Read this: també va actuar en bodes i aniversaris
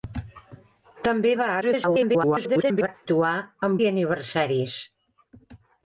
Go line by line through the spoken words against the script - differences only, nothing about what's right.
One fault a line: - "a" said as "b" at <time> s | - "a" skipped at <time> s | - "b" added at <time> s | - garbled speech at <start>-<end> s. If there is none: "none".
- garbled speech at 1.6-2.9 s
- "bodes" skipped at 3.8 s